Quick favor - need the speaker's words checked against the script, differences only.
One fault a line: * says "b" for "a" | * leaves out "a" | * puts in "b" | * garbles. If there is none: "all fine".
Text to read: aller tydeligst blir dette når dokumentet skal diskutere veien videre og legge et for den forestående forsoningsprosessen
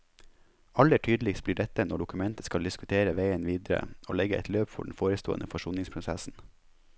* puts in "løp"